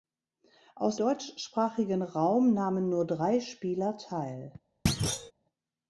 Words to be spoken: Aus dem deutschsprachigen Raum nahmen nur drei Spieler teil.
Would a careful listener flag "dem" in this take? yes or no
yes